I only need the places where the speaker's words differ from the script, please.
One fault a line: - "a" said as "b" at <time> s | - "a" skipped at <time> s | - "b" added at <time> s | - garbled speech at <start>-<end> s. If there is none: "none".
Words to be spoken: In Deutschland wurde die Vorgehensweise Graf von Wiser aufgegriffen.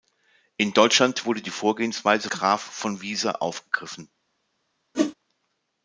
none